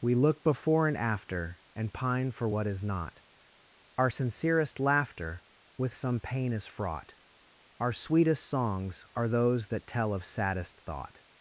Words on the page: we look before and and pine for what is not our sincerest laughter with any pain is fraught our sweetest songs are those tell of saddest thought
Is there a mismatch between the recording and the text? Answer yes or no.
yes